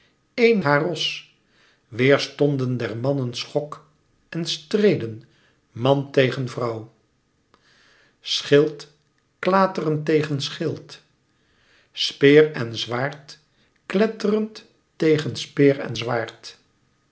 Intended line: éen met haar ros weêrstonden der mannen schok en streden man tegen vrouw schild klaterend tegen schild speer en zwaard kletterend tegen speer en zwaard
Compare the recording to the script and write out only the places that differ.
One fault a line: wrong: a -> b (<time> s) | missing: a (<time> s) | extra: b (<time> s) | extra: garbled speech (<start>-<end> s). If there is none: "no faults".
missing: met (0.6 s)